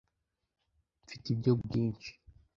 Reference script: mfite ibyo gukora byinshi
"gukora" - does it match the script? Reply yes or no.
no